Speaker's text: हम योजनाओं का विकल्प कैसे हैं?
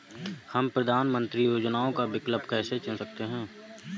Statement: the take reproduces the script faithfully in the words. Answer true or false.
false